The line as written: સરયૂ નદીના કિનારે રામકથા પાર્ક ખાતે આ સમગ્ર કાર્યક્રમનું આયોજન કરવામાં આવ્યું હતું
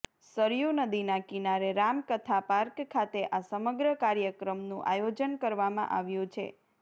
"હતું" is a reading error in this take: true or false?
true